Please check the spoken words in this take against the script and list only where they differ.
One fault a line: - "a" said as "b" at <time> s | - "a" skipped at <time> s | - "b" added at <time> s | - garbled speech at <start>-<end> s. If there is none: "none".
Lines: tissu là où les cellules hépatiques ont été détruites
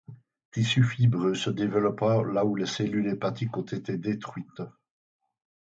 - "fibreux se développant" added at 0.8 s